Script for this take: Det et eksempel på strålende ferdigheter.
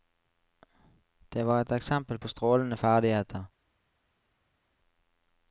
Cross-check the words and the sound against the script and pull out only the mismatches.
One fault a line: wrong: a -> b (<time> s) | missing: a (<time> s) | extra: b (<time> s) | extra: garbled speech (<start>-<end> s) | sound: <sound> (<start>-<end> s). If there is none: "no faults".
extra: var (1.5 s)